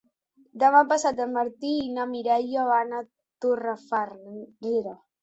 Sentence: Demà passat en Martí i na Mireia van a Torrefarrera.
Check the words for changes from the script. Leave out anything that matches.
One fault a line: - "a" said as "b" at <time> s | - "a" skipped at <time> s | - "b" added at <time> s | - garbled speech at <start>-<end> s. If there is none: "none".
none